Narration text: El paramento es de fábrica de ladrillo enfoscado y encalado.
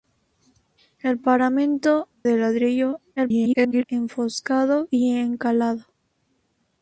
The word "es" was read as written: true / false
false